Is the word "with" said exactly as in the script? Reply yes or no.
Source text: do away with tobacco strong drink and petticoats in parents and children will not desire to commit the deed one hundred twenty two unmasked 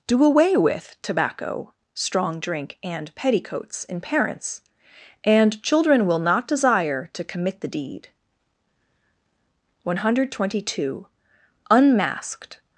yes